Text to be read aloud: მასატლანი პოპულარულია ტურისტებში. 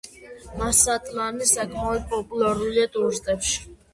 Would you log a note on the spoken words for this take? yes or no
yes